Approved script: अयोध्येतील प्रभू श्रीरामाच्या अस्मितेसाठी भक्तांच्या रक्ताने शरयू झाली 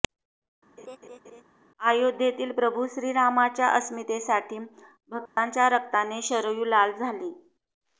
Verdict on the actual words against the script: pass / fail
fail